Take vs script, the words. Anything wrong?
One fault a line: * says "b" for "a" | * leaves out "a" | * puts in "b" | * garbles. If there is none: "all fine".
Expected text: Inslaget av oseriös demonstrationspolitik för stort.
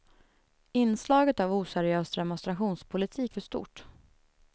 all fine